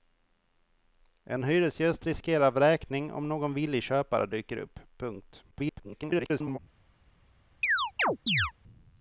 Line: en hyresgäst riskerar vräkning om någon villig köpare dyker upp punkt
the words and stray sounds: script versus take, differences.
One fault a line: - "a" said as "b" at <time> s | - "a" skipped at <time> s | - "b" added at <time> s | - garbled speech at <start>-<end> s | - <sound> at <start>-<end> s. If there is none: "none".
- garbled speech at 5.5-6.6 s
- chirp at 7.6-8.5 s